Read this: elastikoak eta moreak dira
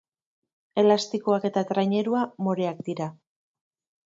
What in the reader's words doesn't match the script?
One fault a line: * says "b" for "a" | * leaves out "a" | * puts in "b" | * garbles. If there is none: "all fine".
* puts in "trainerua"